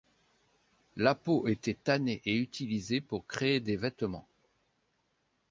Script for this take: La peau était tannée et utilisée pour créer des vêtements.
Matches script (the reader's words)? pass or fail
pass